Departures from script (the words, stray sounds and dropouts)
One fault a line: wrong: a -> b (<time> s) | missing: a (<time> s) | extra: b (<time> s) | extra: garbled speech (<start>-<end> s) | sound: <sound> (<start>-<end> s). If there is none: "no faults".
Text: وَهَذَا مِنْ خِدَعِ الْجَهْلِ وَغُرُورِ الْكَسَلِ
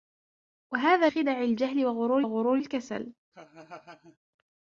missing: مِنْ (1.1 s)
extra: وَغُرُورِ (2.2 s)
sound: laugh (3.3-4.2 s)